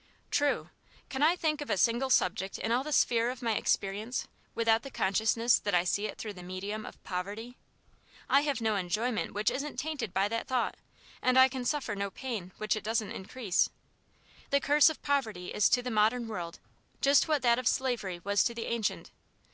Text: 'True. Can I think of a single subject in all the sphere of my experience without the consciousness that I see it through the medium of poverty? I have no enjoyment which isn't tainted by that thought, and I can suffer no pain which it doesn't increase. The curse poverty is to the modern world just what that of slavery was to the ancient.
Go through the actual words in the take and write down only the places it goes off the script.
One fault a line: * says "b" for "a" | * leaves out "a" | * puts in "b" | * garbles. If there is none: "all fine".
* puts in "of"